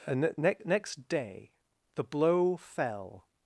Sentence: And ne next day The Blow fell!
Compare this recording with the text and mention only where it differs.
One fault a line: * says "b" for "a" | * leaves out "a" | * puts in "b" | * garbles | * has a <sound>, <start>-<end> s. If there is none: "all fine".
all fine